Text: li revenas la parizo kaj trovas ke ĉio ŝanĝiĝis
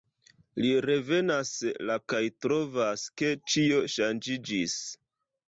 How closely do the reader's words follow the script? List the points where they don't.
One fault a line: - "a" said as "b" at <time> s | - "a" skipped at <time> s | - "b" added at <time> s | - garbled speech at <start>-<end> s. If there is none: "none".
- "parizo" skipped at 2.0 s